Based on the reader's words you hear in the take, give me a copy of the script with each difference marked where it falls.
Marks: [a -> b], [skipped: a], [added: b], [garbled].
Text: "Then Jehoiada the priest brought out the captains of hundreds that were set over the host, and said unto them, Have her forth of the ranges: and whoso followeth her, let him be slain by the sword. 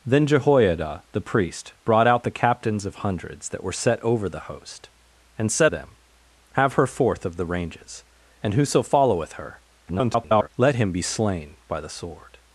"Then Jehoiada the priest brought out the captains of hundreds that were set over the host, and said [skipped: unto] them, Have her forth of the ranges: and whoso followeth her, [garbled] let him be slain by the sword.